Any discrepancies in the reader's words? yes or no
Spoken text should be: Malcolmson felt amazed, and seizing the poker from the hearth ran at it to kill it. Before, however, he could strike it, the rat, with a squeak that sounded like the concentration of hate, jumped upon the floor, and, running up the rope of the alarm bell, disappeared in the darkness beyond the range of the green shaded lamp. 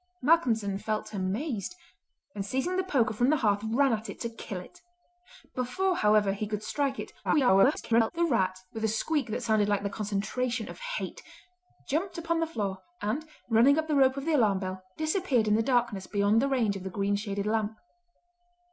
yes